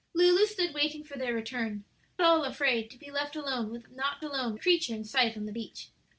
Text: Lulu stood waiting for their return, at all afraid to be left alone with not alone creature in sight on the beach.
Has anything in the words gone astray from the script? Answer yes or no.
no